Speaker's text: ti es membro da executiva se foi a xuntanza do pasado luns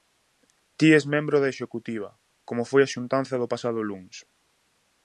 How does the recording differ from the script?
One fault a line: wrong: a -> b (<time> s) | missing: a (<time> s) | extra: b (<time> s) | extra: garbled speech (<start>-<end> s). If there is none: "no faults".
wrong: se -> como (2.5 s)